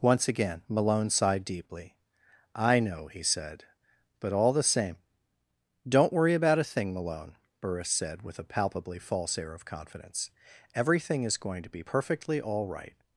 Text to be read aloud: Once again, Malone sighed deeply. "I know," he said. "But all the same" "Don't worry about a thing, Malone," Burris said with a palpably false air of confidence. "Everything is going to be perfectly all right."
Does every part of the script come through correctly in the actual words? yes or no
yes